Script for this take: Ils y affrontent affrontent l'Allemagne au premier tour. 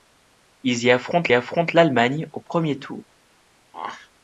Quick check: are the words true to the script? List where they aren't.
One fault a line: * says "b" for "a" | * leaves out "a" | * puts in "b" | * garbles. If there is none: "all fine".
all fine